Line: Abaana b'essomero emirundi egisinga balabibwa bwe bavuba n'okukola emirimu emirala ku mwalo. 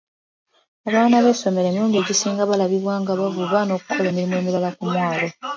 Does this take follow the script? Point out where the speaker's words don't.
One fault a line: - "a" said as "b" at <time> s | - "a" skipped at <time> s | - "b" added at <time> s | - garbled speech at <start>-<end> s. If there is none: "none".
- "bwe" said as "nga" at 3.0 s